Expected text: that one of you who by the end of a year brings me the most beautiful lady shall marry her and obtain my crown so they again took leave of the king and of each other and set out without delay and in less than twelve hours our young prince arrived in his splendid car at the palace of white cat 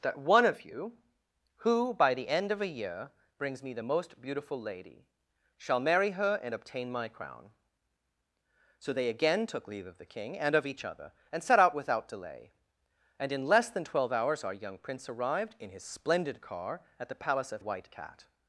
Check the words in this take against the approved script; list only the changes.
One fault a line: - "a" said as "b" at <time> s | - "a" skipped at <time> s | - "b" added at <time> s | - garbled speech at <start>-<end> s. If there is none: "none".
none